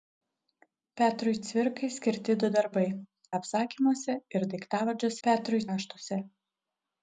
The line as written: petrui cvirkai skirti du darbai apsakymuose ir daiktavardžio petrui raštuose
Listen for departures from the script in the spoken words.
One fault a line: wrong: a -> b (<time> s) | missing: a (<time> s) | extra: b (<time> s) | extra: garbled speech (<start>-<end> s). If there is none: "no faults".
no faults